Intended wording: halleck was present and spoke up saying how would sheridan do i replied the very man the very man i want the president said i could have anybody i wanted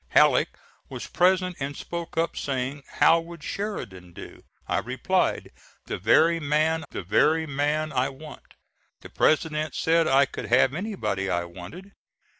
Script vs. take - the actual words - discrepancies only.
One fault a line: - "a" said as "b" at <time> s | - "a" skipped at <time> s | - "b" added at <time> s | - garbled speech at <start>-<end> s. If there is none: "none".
none